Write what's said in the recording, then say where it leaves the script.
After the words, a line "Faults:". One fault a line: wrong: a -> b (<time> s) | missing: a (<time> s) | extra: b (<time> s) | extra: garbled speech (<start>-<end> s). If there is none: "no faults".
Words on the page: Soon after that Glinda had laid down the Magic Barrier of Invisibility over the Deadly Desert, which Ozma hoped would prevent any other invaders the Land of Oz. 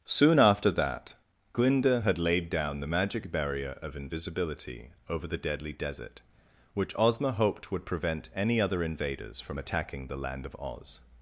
Soon after that Glinda had laid down the Magic Barrier of Invisibility over the Deadly Desert, which Ozma hoped would prevent any other invaders from attacking the Land of Oz.
Faults:
extra: from attacking (9.4 s)